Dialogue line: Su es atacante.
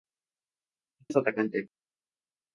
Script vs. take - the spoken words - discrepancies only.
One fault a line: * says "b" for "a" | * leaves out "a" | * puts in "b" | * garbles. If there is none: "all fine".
all fine